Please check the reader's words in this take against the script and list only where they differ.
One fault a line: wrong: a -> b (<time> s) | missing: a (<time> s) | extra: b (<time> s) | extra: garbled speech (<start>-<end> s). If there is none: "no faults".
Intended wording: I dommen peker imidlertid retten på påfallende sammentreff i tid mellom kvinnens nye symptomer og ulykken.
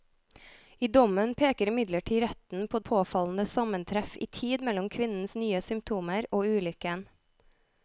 no faults